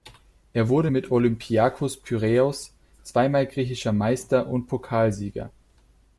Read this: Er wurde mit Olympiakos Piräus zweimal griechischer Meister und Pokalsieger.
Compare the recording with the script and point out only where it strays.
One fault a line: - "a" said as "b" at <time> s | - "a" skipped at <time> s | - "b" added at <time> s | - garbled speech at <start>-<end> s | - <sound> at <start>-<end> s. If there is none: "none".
none